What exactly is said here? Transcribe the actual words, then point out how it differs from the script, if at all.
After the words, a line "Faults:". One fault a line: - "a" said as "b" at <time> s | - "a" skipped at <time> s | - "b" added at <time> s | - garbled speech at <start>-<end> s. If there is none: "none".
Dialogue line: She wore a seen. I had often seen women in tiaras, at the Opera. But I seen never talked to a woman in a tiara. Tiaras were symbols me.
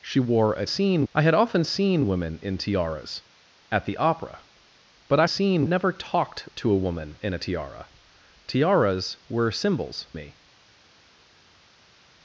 She wore a seen. I had often seen women in tiaras, at the Opera. But I seen never talked to a woman in a tiara. Tiaras were symbols me.
Faults:
none